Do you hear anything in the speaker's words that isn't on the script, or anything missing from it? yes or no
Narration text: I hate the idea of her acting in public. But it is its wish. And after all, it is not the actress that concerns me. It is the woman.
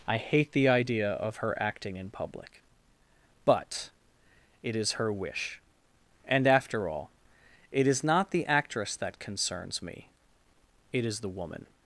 yes